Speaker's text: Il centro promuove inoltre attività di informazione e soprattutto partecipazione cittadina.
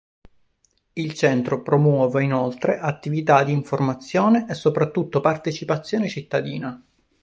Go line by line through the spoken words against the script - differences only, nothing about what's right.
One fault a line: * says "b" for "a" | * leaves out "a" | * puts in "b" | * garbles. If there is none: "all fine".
all fine